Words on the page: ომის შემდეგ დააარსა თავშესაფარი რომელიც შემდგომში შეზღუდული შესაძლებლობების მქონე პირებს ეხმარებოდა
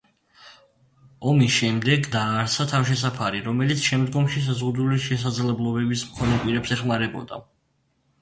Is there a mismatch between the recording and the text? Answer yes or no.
no